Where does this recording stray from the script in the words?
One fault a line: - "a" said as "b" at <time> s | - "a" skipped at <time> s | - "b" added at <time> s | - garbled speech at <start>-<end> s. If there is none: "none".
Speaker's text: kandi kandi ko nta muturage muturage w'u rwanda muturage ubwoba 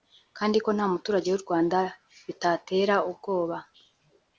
- "kandi" skipped at 0.6 s
- "muturage" skipped at 1.3 s
- "muturage" said as "bitatera" at 2.3 s